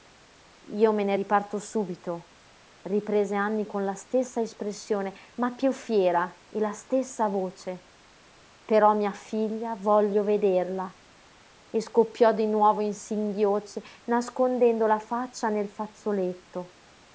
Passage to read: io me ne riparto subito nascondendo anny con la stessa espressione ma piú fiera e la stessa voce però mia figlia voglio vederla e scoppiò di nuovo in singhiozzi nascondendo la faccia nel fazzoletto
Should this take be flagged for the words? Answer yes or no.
yes